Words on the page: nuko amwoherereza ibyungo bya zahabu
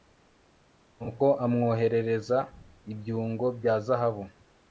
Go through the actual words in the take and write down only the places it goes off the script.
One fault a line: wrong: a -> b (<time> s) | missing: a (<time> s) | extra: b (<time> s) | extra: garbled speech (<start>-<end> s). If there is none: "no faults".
no faults